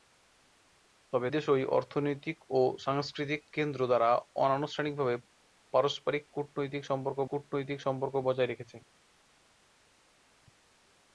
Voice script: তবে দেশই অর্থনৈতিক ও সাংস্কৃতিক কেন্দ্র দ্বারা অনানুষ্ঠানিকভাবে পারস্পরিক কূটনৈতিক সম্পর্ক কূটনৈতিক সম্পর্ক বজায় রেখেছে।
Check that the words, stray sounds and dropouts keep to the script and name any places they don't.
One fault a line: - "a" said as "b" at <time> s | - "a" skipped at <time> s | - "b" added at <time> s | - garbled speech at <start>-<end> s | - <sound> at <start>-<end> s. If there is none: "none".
none